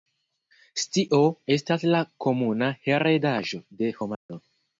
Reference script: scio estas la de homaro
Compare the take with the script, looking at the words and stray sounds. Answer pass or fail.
fail